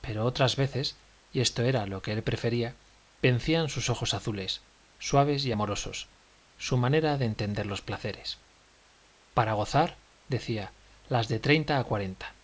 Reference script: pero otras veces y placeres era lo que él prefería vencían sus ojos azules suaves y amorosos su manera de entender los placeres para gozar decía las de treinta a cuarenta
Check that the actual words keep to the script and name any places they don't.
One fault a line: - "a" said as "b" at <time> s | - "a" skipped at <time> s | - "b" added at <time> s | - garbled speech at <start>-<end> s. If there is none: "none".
- "placeres" said as "esto" at 1.4 s